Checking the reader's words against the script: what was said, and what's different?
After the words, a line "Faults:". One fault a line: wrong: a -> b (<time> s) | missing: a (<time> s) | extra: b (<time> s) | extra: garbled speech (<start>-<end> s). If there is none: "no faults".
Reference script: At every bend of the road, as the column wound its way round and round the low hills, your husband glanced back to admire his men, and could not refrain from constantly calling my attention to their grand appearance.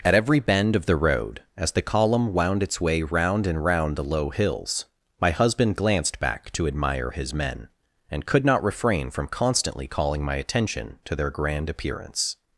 At every bend of the road, as the column wound its way round and round the low hills, my husband glanced back to admire his men, and could not refrain from constantly calling my attention to their grand appearance.
Faults:
wrong: your -> my (5.2 s)